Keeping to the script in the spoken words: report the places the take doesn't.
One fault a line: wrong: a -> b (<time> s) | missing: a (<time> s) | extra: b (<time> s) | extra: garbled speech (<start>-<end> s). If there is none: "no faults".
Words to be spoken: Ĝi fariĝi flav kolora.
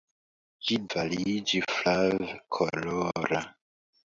no faults